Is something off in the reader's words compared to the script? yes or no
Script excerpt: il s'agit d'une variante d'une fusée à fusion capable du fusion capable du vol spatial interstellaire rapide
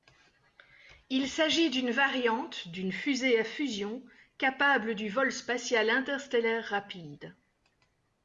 yes